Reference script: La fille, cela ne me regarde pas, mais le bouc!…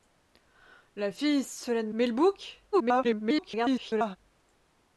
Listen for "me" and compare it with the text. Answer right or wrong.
wrong